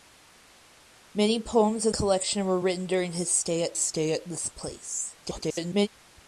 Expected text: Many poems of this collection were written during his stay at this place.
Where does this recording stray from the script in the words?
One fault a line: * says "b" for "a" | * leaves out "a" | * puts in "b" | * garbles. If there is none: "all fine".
* leaves out "this"
* puts in "stay at"
* garbles